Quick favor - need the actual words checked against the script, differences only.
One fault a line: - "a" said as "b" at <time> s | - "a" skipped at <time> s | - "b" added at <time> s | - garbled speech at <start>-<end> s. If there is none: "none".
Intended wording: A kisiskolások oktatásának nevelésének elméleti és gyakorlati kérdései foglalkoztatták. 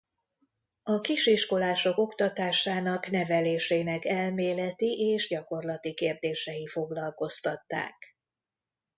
none